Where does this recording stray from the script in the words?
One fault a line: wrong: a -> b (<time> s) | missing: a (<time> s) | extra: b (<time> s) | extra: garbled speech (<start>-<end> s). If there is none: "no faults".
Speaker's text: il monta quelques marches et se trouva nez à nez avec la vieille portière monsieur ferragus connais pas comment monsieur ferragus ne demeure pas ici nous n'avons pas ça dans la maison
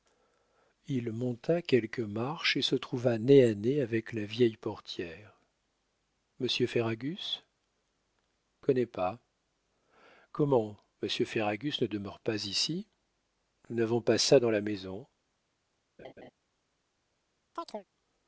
no faults